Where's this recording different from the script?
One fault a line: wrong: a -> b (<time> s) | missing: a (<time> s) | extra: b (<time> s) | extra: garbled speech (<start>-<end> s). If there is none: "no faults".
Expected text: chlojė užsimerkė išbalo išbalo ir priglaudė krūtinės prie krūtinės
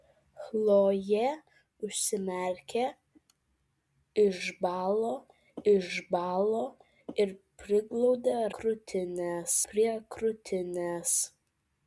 no faults